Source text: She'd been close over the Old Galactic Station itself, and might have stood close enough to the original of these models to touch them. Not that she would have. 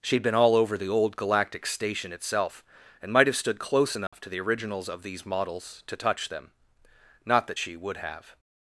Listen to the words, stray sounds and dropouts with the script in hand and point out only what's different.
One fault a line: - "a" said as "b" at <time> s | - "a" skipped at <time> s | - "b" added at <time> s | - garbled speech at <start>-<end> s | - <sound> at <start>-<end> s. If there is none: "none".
- "close" said as "all" at 0.3 s
- dropout at 4.1-4.1 s
- "original" said as "originals" at 4.4 s